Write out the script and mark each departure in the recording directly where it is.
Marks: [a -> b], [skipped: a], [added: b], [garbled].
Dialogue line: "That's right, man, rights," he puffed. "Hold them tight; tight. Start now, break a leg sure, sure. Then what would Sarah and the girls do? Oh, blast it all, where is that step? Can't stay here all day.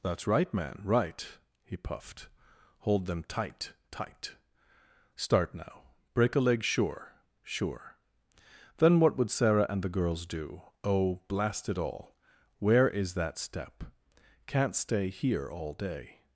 "That's right, man, [rights," -> right] he puffed. "Hold them tight; tight. Start now, break a leg sure, sure. Then what would Sarah and the girls do? Oh, blast it all, where is that step? Can't stay here all day.